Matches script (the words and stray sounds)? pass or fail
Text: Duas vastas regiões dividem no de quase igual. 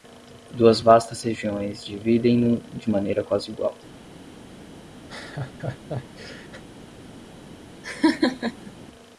fail